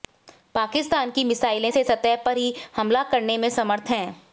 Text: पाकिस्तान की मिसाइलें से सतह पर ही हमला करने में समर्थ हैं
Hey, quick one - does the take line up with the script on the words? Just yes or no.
yes